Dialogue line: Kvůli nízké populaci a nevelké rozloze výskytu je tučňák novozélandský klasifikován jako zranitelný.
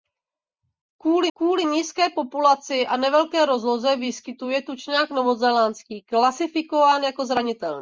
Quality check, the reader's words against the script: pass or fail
fail